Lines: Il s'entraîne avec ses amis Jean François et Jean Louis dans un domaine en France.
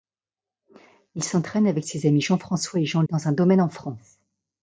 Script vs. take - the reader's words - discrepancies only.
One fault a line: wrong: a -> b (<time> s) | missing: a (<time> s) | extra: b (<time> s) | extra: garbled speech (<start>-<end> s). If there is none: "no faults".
missing: Louis (3.0 s)